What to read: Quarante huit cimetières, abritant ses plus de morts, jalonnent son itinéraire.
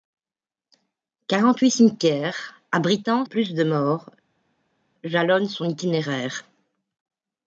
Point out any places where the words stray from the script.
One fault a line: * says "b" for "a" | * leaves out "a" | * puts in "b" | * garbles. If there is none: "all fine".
* leaves out "ses"